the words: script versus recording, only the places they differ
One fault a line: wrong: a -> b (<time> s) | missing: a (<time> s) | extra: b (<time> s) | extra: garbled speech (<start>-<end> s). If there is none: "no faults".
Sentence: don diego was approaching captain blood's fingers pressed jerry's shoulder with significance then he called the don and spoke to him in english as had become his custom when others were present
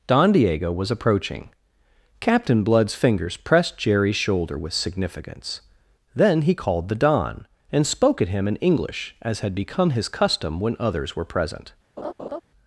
wrong: to -> at (8.2 s)